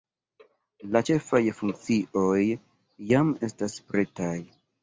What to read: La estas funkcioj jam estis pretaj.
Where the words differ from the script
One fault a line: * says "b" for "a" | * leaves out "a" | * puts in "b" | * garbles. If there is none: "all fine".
* says "ĉefaj" for "estas"
* says "estas" for "estis"